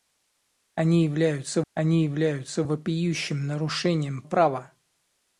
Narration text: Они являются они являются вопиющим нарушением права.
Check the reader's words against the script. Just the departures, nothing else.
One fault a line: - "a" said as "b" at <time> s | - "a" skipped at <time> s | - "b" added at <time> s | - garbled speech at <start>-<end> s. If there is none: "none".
none